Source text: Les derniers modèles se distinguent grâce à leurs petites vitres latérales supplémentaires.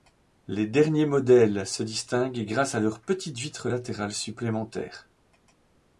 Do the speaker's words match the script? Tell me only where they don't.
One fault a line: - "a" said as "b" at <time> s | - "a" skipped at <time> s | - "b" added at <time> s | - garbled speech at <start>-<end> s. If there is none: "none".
none